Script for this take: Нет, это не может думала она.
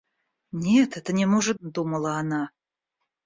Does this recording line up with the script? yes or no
yes